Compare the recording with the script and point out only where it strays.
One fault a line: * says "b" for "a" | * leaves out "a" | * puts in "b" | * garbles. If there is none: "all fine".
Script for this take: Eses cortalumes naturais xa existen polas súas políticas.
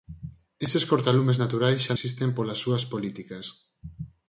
all fine